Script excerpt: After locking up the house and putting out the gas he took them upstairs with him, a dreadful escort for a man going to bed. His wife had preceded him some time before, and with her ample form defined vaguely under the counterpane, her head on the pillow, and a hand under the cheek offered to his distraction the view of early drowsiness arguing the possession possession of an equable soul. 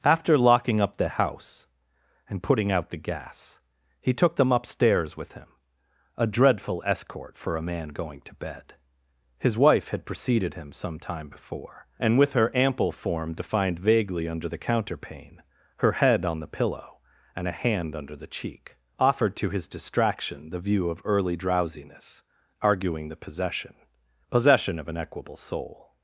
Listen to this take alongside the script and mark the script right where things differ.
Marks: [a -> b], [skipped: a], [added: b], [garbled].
After locking up the house and putting out the gas he took them upstairs with him, a dreadful escort for a man going to bed. His wife had preceded him some time before, and with her ample form defined vaguely under the counterpane, her head on the pillow, and a hand under the cheek offered to his distraction the view of early drowsiness arguing the possession possession of an equable soul.